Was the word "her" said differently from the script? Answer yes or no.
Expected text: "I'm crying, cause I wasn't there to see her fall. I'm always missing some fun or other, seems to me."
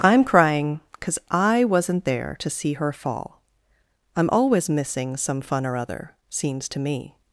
no